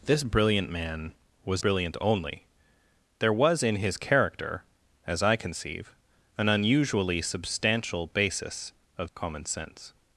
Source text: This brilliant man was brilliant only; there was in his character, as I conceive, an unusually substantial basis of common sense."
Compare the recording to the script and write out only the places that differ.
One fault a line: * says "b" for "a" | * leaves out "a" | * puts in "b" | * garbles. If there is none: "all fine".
all fine